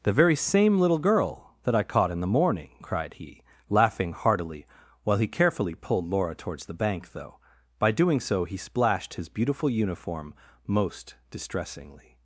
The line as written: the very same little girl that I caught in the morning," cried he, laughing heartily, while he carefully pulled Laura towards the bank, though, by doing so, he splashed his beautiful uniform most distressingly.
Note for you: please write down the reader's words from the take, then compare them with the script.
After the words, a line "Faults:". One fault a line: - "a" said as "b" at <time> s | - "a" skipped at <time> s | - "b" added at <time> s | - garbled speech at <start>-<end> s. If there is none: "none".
the very same little girl that I caught in the morning," cried he, laughing heartily, while he carefully pulled Laura towards the bank, though, by doing so, he splashed his beautiful uniform most distressingly.
Faults:
none